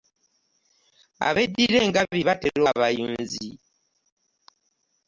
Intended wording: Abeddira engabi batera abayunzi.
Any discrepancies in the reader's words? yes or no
no